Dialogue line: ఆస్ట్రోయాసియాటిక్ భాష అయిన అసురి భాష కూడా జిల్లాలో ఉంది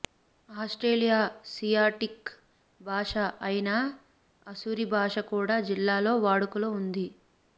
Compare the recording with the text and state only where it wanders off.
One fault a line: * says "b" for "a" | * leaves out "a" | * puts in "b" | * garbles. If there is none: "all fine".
* puts in "వాడుకలో"